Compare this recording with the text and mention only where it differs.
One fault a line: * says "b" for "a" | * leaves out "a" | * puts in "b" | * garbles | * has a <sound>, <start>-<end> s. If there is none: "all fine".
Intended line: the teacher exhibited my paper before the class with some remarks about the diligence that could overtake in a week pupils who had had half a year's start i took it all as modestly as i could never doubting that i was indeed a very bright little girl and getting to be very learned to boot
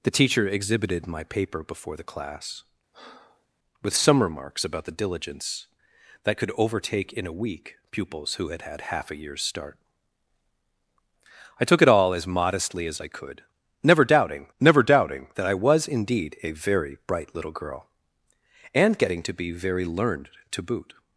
* has a breath, 2.9-3.5 s
* puts in "never doubting"